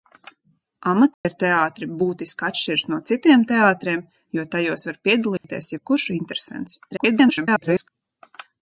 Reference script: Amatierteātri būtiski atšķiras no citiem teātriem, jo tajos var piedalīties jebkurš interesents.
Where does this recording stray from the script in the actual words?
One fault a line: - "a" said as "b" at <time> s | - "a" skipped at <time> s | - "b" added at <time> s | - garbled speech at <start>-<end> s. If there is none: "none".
- garbled speech at 6.9-7.9 s